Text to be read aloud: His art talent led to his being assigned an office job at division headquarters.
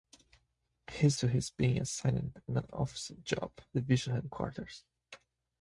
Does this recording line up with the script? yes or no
no